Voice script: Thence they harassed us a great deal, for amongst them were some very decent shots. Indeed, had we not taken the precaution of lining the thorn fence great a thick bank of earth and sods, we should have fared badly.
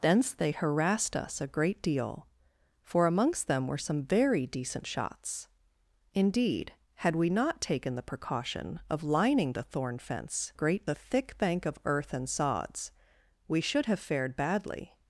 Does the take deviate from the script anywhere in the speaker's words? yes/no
no